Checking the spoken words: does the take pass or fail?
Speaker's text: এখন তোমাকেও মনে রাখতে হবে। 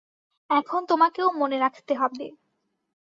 pass